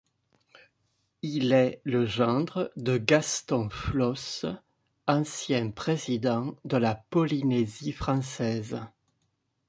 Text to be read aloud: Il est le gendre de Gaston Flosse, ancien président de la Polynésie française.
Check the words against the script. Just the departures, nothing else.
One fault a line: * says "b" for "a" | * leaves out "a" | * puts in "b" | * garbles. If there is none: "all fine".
all fine